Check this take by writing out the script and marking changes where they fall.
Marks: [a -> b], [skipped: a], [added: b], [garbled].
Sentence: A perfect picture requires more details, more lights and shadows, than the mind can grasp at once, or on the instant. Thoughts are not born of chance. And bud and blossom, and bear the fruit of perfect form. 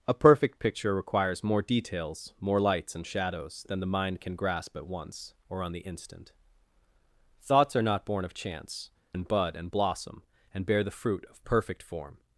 A perfect picture requires more details, more lights and shadows, than the mind can grasp at once, or on the instant. Thoughts are not born of chance. And bud and blossom, and bear the fruit of perfect form.